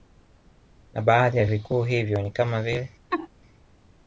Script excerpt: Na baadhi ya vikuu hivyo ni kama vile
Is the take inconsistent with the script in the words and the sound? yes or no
yes